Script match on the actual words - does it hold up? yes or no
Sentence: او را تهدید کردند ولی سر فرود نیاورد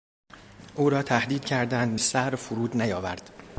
no